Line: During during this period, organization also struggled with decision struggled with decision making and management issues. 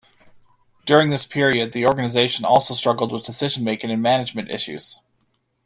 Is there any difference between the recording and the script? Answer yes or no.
yes